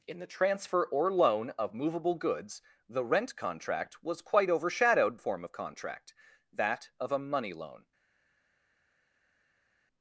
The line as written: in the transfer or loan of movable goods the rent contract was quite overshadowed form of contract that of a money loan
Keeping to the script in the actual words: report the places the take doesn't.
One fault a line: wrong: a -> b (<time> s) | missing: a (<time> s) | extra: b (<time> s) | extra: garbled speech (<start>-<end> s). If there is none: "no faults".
no faults